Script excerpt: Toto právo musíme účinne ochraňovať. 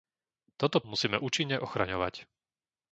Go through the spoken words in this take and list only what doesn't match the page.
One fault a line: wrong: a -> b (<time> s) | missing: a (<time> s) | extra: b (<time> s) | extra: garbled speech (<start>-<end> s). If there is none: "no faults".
missing: právo (0.8 s)